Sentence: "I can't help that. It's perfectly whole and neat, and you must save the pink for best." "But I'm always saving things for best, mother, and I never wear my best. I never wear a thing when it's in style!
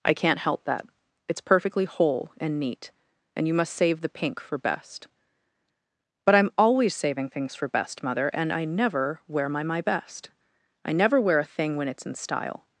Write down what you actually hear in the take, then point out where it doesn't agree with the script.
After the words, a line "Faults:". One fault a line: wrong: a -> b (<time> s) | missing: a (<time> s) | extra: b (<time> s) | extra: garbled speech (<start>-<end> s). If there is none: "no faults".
"I can't help that. It's perfectly whole and neat, and you must save the pink for best." "But I'm always saving things for best, mother, and I never wear my my best. I never wear a thing when it's in style!
Faults:
extra: my (9.6 s)